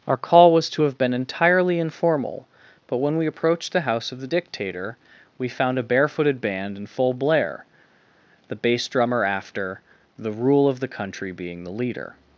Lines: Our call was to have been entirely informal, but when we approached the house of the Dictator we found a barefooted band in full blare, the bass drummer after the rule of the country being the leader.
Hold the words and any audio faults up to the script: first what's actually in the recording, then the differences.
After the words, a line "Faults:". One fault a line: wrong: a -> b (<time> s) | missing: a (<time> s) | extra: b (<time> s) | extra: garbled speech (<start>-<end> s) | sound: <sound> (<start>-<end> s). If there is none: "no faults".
Our call was to have been entirely informal, but when we approached the house of the Dictator we found a barefooted band in full blare, the bass drummer after the rule of the country being the leader.
Faults:
no faults